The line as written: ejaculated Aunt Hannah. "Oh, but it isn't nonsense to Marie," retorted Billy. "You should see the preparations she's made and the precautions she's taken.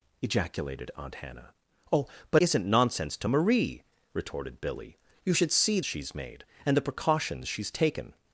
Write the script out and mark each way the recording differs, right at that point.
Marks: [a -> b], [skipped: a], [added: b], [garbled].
ejaculated Aunt Hannah. "Oh, but [skipped: it] isn't nonsense to Marie," retorted Billy. "You should see [skipped: the preparations] she's made and the precautions she's taken.